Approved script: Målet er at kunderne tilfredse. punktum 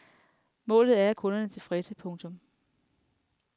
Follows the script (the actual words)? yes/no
yes